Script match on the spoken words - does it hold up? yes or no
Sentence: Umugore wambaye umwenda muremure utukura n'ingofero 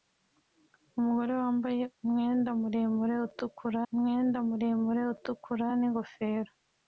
no